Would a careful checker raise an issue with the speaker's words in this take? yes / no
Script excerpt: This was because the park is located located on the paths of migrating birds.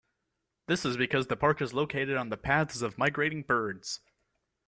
yes